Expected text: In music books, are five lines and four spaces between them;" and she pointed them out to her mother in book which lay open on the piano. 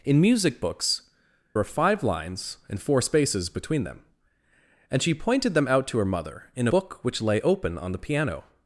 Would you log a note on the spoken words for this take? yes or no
no